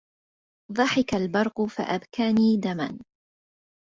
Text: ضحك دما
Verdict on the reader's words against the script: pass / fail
fail